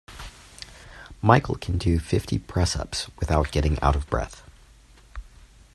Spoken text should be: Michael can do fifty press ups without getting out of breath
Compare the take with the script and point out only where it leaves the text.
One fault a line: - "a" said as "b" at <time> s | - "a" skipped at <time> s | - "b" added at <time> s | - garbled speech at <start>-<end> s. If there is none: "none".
none